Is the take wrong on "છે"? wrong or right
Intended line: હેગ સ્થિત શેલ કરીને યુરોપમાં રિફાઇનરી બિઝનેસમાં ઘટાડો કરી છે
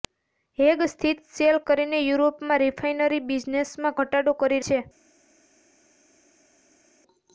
right